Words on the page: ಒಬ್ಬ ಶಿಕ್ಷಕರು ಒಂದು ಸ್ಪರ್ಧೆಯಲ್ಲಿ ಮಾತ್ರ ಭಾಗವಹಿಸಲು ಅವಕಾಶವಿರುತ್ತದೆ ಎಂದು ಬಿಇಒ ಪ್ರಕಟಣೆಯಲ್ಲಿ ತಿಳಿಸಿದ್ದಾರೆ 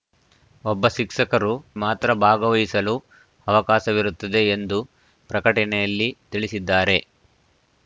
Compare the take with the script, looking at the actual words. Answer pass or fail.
fail